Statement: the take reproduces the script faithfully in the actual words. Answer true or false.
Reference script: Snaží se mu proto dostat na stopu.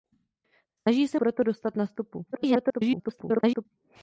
false